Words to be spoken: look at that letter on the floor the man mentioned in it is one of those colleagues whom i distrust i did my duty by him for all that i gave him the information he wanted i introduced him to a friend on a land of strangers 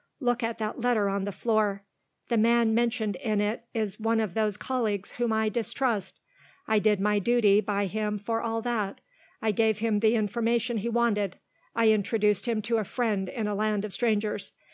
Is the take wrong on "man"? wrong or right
right